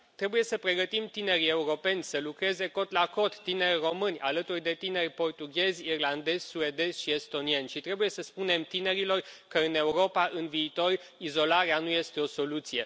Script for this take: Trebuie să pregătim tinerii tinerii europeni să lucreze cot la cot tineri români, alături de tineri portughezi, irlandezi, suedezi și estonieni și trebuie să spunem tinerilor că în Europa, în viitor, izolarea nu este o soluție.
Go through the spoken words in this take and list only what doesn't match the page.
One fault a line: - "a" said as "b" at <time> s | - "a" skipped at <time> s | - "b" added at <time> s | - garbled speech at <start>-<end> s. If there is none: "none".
- "tinerii" skipped at 1.5 s